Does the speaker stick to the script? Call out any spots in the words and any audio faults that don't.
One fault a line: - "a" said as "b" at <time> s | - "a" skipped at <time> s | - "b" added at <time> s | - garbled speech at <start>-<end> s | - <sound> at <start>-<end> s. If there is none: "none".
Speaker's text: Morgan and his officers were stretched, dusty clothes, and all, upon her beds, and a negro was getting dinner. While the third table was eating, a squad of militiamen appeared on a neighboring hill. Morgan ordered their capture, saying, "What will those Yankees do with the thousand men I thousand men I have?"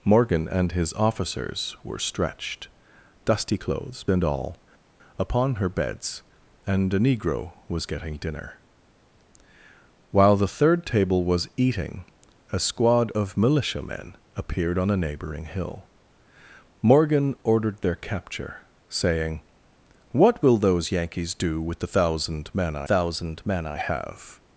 none